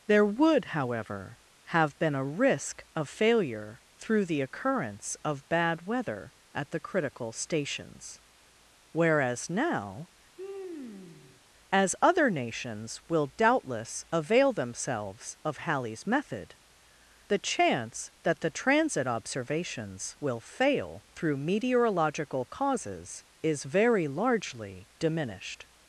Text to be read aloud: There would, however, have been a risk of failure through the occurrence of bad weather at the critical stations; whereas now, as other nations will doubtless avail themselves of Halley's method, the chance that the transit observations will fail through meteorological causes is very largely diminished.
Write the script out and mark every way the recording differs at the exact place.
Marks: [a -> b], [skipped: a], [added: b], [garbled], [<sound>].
There would, however, have been a risk of failure through the occurrence of bad weather at the critical stations; whereas now, [sigh] as other nations will doubtless avail themselves of Halley's method, the chance that the transit observations will fail through meteorological causes is very largely diminished.